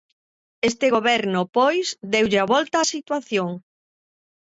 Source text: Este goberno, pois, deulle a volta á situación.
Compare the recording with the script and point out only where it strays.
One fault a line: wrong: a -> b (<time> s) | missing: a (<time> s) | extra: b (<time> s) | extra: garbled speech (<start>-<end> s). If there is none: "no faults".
no faults